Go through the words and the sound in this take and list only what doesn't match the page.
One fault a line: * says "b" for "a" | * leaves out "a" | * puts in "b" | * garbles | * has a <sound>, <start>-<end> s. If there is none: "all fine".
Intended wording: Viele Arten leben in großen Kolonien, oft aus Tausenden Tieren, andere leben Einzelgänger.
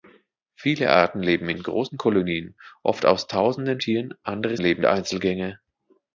all fine